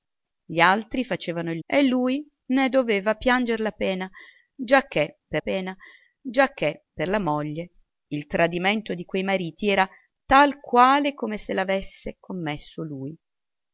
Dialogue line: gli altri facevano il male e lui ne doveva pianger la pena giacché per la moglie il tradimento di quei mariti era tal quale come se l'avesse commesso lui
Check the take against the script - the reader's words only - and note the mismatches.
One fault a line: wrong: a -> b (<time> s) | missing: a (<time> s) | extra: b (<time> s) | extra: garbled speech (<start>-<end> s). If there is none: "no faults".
missing: male (1.6 s)
extra: pena giacché per (5.4 s)